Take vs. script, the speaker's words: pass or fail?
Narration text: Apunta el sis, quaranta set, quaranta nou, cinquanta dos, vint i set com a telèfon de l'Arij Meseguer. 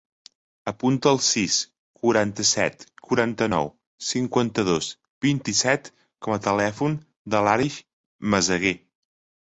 pass